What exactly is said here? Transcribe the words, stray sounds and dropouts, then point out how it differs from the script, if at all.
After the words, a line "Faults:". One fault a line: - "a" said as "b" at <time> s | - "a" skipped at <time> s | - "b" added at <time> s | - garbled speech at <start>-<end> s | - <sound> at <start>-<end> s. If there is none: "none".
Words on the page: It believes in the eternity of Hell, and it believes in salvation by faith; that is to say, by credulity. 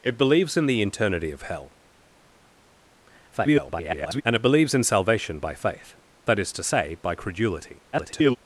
It believes in the eternity of Hell, [garbled] and it believes in salvation by faith; that is to say, by credulity. [garbled]
Faults:
- garbled speech at 3.3-4.2 s
- garbled speech at 7.9-8.4 s